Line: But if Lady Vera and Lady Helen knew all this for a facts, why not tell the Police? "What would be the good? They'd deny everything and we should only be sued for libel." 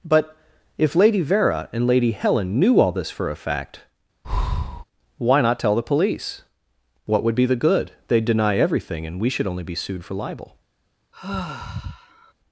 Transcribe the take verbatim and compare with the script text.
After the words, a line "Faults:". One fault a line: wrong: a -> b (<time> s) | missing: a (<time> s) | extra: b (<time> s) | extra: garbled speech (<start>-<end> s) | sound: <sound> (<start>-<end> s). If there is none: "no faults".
But if Lady Vera and Lady Helen knew all this for a fact, why not tell the Police? "What would be the good? They'd deny everything and we should only be sued for libel."
Faults:
wrong: facts -> fact (3.4 s)
sound: breath (4.2-4.8 s)
sound: sigh (11.1-12.3 s)